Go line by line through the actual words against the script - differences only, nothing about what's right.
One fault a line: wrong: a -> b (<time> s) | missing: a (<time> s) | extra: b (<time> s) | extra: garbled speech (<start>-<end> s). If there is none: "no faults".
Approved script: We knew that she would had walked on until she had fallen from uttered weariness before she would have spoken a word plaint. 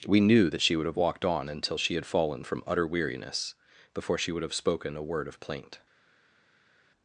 wrong: had -> have (0.8 s)
wrong: uttered -> utter (2.7 s)
extra: of (5.3 s)